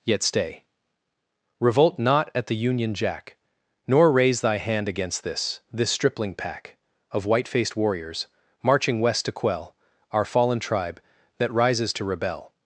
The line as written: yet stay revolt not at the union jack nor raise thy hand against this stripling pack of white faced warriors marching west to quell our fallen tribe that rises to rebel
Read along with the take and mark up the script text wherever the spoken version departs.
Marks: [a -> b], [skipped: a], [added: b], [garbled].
yet stay revolt not at the union jack nor raise thy hand against this [added: this] stripling pack of white faced warriors marching west to quell our fallen tribe that rises to rebel